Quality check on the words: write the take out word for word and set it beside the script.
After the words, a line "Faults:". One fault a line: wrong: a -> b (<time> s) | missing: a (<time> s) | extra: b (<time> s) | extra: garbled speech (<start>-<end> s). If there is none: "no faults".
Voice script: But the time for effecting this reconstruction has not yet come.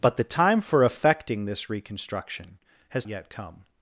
But the time for effecting this reconstruction has yet come.
Faults:
missing: not (3.1 s)